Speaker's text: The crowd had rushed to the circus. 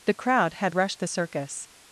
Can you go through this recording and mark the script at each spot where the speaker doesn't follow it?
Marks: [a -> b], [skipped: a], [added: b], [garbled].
The crowd had rushed [skipped: to] the circus.